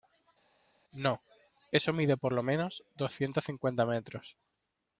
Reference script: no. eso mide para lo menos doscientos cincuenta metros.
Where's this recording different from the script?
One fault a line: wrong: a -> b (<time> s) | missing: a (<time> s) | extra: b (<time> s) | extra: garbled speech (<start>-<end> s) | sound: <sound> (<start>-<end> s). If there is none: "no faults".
wrong: para -> por (2.2 s)